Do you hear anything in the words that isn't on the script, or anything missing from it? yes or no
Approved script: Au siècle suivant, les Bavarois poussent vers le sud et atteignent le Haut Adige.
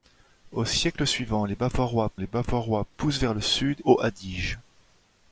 yes